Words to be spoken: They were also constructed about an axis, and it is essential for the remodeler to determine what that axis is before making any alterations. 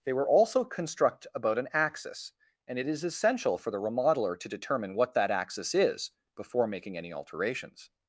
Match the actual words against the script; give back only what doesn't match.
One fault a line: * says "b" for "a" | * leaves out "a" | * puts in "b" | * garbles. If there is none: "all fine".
* says "construct" for "constructed"